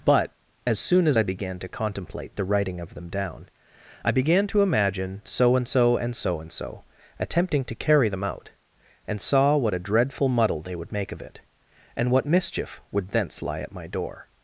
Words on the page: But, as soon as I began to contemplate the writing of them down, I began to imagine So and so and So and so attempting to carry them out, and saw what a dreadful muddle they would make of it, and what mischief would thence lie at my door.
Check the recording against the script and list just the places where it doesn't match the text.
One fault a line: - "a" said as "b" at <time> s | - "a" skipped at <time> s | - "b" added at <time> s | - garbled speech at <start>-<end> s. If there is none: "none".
none